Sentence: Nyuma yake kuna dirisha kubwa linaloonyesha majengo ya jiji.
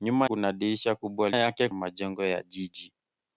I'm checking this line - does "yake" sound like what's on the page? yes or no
no